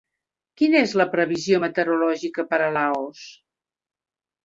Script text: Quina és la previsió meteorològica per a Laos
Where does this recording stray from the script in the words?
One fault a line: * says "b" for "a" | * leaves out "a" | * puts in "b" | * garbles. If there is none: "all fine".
all fine